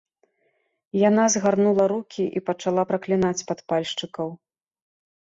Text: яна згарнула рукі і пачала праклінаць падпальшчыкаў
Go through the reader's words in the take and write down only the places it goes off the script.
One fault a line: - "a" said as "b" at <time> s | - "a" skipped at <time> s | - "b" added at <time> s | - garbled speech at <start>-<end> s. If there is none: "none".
none